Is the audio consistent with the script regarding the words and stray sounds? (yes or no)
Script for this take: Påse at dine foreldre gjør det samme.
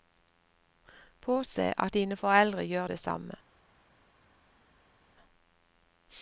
yes